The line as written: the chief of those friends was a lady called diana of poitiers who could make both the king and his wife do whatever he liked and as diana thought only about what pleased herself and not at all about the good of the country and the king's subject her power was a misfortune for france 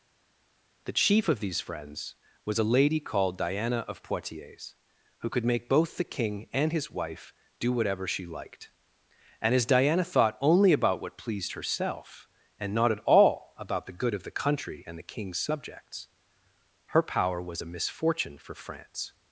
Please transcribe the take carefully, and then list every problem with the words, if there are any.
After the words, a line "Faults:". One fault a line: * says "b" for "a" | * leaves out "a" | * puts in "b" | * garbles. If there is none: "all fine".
the chief of these friends was a lady called diana of poitiers who could make both the king and his wife do whatever she liked and as diana thought only about what pleased herself and not at all about the good of the country and the king's subjects her power was a misfortune for france
Faults:
* says "these" for "those"
* says "she" for "he"
* says "subjects" for "subject"